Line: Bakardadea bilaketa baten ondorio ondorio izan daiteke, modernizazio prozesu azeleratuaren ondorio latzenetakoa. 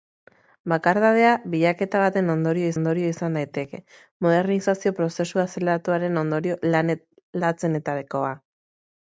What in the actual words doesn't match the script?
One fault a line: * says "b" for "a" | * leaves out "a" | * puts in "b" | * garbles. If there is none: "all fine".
all fine